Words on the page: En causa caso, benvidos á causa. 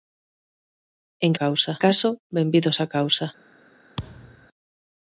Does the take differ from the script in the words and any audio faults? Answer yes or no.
yes